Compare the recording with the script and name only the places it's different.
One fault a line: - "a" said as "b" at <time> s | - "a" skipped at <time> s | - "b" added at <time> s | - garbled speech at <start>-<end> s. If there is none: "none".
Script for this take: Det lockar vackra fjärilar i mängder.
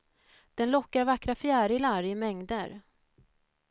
- "Det" said as "Den" at 0.6 s